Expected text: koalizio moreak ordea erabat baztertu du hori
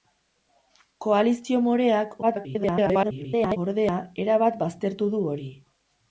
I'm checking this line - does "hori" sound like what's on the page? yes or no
yes